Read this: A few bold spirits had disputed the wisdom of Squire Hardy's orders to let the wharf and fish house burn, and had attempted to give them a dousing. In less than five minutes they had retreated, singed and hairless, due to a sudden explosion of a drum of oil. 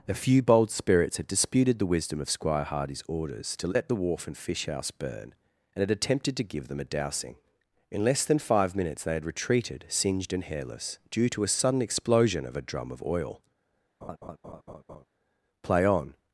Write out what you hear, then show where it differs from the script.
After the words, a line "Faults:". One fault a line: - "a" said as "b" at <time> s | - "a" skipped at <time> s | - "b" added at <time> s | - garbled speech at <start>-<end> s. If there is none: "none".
A few bold spirits had disputed the wisdom of Squire Hardy's orders to let the wharf and fish house burn, and had attempted to give them a dousing. In less than five minutes they had retreated, singed and hairless, due to a sudden explosion of a drum of oil. "Play on
Faults:
- "Play on" added at 15.6 s